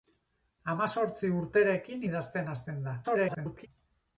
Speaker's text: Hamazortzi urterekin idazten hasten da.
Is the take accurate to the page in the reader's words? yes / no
no